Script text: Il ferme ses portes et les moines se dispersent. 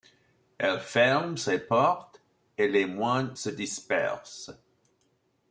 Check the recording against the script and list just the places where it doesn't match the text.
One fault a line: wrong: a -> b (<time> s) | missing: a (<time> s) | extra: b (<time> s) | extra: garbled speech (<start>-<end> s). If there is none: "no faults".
wrong: Il -> Elle (0.6 s)